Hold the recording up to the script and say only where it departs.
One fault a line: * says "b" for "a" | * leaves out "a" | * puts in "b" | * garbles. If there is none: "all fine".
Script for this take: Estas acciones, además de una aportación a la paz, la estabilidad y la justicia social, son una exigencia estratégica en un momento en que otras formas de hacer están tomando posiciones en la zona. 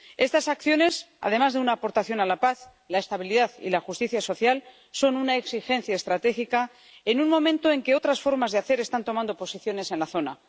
all fine